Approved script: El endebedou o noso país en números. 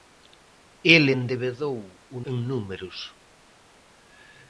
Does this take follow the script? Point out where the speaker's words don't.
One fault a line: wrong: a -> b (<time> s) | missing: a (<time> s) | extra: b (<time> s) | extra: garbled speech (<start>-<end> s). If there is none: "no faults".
missing: noso país (2.2 s)